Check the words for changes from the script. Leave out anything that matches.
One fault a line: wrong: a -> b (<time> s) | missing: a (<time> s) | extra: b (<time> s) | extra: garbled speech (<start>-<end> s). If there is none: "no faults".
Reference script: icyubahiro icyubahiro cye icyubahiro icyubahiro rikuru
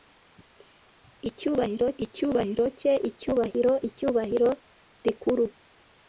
no faults